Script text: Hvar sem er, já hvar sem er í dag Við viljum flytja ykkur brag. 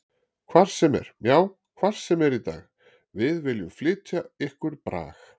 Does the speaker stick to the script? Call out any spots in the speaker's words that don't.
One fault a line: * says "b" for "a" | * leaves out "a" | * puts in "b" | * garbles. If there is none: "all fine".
all fine